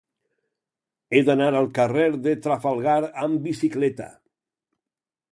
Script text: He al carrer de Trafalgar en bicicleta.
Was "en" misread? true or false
true